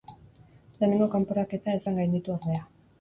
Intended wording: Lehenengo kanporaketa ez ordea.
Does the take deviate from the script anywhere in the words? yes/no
yes